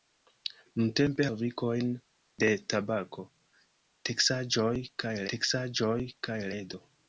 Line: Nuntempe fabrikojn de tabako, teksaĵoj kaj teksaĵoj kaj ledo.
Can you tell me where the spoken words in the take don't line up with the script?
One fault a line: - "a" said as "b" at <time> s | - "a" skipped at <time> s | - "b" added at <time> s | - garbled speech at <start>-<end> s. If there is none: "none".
none